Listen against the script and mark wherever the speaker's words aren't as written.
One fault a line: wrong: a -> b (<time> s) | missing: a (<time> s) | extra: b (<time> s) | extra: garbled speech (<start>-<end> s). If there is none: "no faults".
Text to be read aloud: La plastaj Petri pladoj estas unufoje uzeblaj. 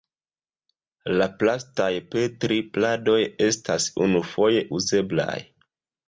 no faults